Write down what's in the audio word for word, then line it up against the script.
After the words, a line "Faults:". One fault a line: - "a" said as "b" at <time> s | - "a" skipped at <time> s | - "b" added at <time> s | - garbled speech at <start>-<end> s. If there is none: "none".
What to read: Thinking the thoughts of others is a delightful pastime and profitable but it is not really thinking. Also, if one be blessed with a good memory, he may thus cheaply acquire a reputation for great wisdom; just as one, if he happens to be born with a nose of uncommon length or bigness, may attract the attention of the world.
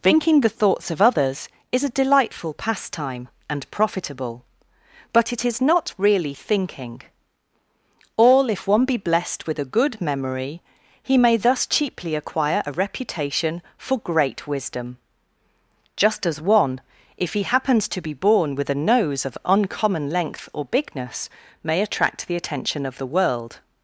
Thinking the thoughts of others is a delightful pastime and profitable but it is not really thinking. All, if one be blessed with a good memory, he may thus cheaply acquire a reputation for great wisdom; just as one, if he happens to be born with a nose of uncommon length or bigness, may attract the attention of the world.
Faults:
- "Also" said as "All" at 8.1 s